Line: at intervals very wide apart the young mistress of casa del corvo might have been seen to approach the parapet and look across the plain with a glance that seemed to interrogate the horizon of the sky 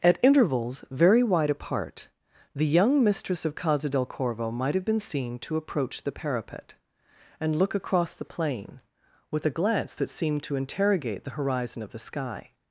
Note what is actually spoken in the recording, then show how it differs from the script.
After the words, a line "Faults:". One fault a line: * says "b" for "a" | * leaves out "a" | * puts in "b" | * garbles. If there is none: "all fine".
at intervals very wide apart the young mistress of casa del corvo might have been seen to approach the parapet and look across the plain with a glance that seemed to interrogate the horizon of the sky
Faults:
all fine